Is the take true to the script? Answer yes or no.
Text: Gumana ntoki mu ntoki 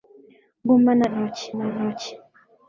yes